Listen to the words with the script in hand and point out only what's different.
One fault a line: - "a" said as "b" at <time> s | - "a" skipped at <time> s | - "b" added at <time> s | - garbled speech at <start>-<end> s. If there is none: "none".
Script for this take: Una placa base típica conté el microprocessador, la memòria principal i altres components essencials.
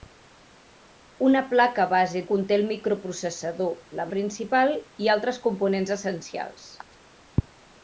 - "típica" skipped at 2.2 s
- "memòria" skipped at 4.1 s